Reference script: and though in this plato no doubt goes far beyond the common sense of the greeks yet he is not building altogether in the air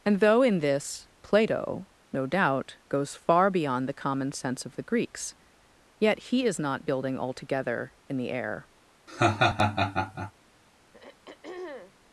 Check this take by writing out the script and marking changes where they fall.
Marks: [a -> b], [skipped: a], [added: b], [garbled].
and though in this plato no doubt goes far beyond the common sense of the greeks yet he is not building altogether in the air